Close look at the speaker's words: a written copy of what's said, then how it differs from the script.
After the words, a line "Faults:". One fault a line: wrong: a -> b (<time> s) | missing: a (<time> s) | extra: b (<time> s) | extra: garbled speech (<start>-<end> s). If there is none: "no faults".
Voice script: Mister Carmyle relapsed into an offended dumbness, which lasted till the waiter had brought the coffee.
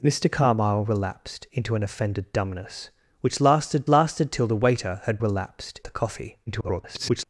Mister Carmyle relapsed into an offended dumbness, which lasted lasted till the waiter had relapsed the coffee. [garbled]
Faults:
extra: lasted (3.9 s)
wrong: brought -> relapsed (5.2 s)
extra: garbled speech (6.5-7.2 s)